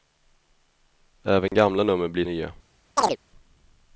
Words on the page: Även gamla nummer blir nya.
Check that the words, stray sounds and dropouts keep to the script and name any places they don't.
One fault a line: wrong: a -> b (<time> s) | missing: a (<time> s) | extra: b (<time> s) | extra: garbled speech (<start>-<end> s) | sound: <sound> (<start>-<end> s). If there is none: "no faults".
sound: dropout (1.5-1.5 s)
sound: chirp (3.0-3.2 s)